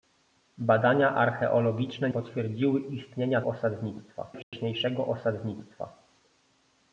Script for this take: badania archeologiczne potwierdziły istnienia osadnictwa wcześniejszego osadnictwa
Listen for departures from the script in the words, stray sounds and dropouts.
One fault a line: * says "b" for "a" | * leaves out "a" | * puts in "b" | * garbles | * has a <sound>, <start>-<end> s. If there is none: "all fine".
* has a dropout, 4.4-4.5 s